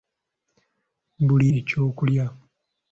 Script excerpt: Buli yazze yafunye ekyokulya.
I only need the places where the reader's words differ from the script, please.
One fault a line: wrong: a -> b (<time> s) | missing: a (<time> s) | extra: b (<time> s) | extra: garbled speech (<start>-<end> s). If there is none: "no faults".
missing: yazze yafunye (1.5 s)